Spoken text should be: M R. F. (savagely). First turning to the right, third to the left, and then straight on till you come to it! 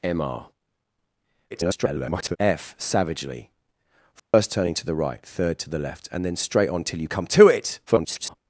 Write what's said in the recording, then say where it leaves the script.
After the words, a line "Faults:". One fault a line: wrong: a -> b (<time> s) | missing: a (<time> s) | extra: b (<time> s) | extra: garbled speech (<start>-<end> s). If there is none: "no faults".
M R. [garbled] F. (savagely). First turning to the right, third to the left, and then straight on till you come to it! [garbled]
Faults:
extra: garbled speech (1.5-2.4 s)
extra: garbled speech (7.9-8.4 s)